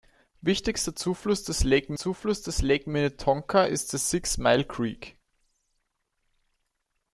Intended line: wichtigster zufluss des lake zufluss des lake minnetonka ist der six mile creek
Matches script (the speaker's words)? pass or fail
pass